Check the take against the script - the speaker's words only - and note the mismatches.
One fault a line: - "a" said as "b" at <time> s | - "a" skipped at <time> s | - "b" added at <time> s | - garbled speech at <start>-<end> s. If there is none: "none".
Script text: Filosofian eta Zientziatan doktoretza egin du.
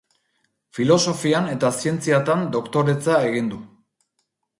none